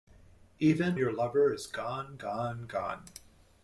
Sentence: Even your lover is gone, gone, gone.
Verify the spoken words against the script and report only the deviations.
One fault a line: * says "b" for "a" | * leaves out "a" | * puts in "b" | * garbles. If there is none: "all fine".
all fine